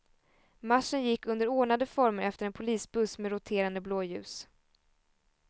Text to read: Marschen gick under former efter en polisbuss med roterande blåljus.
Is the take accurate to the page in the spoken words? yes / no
no